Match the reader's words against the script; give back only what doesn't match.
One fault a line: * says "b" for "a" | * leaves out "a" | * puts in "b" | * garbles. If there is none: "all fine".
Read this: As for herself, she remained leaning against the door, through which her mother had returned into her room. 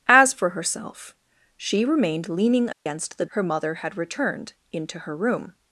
* leaves out "door through which"